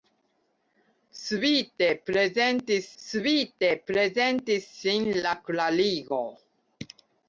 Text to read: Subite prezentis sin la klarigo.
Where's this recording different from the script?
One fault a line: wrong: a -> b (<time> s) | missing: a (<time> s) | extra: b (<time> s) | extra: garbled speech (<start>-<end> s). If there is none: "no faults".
extra: subite prezentis (3.0 s)